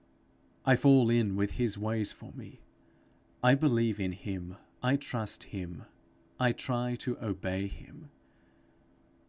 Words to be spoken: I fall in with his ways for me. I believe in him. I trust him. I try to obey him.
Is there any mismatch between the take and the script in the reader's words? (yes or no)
no